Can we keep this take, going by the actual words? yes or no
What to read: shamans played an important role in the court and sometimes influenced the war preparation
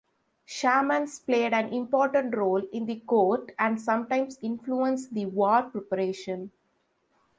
yes